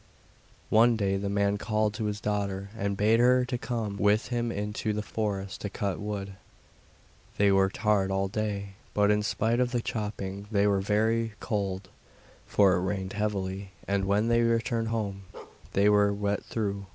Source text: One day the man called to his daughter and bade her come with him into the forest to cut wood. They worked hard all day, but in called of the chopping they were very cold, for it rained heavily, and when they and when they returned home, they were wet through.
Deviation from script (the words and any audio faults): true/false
true